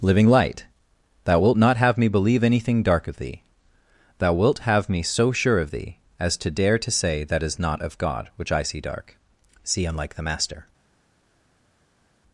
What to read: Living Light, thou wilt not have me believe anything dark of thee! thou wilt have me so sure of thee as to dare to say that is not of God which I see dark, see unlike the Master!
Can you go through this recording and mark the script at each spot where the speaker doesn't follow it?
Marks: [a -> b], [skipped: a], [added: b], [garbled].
Living Light, thou wilt not have me believe anything dark of thee! thou wilt have me so sure of thee as to dare to say that is not of God which I see dark, see unlike the Master!